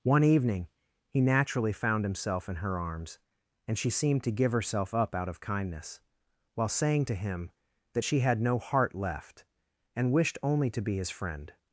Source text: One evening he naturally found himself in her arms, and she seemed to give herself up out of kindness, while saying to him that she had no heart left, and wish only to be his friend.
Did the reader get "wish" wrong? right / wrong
wrong